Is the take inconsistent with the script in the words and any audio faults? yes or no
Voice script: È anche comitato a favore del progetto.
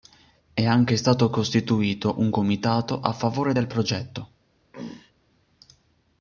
yes